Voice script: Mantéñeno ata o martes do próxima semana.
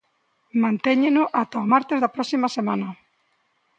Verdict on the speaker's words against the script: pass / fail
fail